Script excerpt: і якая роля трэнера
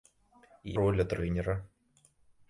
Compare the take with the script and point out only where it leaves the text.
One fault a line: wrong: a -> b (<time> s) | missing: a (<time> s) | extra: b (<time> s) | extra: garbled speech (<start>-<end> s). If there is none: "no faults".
missing: якая (0.7 s)